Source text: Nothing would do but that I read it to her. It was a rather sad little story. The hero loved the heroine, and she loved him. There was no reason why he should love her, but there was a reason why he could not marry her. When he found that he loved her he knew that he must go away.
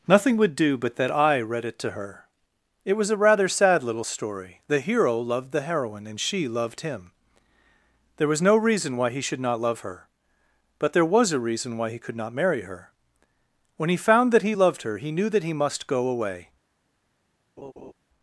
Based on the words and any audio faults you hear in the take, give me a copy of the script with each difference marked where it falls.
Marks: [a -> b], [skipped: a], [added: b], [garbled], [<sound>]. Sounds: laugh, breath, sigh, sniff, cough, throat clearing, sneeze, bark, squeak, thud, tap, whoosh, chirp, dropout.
Nothing would do but that I read it to her. It was a rather sad little story. The hero loved the heroine, and she loved him. There was no reason why he should [added: not] love her, but there was a reason why he could not marry her. When he found that he loved her he knew that he must go away. [laugh]